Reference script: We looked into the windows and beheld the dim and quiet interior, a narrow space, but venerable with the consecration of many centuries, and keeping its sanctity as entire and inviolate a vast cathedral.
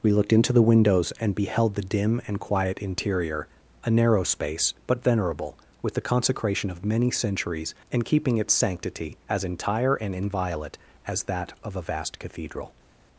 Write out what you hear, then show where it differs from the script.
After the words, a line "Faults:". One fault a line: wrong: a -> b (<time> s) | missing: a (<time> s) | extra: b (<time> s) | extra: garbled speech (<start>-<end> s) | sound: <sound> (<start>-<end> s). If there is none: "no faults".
We looked into the windows and beheld the dim and quiet interior, a narrow space, but venerable with the consecration of many centuries, and keeping its sanctity as entire and inviolate as that of a vast cathedral.
Faults:
extra: as that of (11.1 s)